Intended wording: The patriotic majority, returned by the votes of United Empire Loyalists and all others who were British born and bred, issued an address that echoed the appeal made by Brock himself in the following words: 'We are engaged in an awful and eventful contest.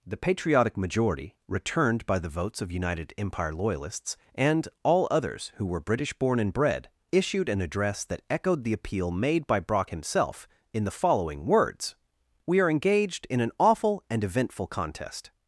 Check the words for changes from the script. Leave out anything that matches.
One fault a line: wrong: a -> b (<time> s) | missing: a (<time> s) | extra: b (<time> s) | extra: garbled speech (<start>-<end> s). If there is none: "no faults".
no faults